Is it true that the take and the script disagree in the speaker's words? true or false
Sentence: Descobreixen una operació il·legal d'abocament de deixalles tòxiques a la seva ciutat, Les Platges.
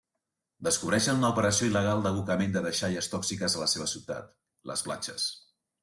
false